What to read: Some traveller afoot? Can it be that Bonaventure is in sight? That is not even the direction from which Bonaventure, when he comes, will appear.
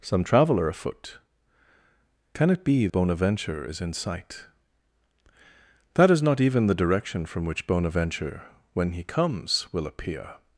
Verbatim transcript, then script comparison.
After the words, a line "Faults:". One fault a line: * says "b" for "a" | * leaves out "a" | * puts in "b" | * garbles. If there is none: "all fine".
Some traveller afoot? Can it be Bonaventure is in sight? That is not even the direction from which Bonaventure, when he comes, will appear.
Faults:
* leaves out "that"